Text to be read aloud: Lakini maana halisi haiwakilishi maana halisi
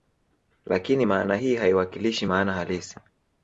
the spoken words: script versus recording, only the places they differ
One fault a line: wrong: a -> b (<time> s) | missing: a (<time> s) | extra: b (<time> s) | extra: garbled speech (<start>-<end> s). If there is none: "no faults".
wrong: halisi -> hii (1.3 s)